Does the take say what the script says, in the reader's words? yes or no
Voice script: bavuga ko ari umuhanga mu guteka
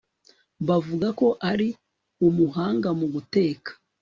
yes